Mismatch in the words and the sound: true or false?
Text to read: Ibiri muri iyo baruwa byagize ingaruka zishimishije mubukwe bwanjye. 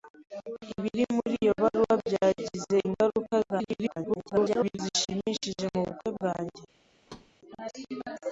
true